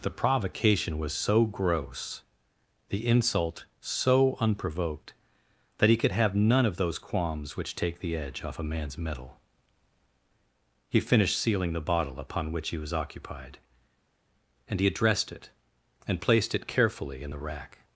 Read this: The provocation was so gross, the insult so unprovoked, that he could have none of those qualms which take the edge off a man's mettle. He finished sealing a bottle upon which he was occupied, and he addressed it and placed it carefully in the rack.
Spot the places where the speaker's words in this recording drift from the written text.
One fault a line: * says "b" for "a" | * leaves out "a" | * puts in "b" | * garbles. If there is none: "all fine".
* says "the" for "a"